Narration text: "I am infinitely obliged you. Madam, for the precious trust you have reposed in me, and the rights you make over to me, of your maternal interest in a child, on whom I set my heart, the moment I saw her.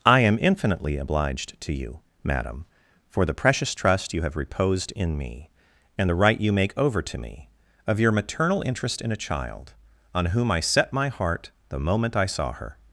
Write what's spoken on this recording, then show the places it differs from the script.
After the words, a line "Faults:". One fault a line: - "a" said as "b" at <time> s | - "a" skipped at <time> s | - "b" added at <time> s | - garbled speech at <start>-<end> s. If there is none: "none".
"I am infinitely obliged to you. Madam, for the precious trust you have reposed in me, and the right you make over to me, of your maternal interest in a child, on whom I set my heart, the moment I saw her.
Faults:
- "to" added at 1.6 s
- "rights" said as "right" at 6.1 s